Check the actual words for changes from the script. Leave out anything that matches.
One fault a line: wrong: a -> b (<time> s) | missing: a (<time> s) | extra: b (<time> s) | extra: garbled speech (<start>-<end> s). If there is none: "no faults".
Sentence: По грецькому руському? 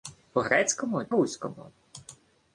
no faults